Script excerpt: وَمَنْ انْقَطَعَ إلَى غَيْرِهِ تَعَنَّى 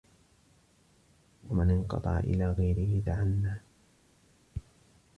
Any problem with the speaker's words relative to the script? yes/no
no